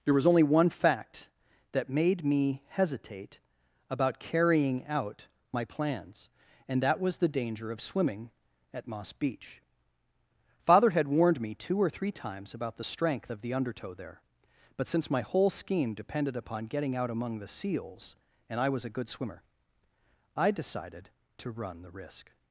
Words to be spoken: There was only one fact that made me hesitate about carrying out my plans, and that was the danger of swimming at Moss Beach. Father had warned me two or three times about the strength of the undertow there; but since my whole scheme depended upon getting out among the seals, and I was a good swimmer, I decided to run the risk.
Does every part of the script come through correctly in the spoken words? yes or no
yes